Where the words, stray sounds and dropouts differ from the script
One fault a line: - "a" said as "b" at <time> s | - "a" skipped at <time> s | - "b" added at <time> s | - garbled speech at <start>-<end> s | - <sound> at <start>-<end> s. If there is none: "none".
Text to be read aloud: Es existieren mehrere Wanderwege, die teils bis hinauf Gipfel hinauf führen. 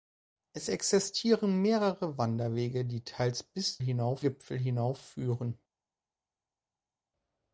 none